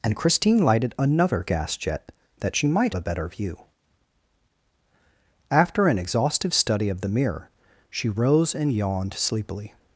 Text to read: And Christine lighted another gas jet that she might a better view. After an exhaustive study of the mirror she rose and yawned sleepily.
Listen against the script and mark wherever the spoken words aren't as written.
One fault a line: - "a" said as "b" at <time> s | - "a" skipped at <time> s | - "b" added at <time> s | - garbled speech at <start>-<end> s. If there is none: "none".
none